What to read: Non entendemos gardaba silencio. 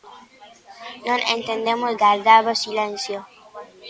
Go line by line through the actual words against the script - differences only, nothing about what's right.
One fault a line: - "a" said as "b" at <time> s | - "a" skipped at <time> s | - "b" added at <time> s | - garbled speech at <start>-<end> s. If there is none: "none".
none